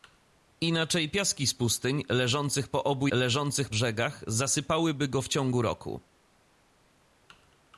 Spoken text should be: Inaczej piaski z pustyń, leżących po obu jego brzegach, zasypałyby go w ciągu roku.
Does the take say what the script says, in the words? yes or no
no